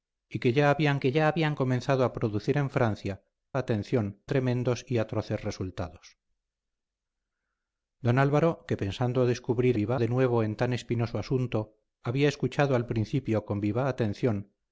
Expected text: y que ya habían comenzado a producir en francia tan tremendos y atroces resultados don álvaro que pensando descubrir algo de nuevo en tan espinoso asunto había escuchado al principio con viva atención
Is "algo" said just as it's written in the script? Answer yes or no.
no